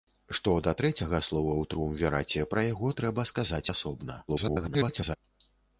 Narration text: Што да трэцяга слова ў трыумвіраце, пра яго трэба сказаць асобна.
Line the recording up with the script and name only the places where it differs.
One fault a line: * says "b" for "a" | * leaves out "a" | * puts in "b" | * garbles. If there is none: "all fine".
* garbles